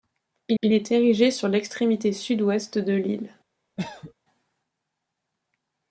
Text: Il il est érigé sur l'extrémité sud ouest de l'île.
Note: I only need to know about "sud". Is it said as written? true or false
true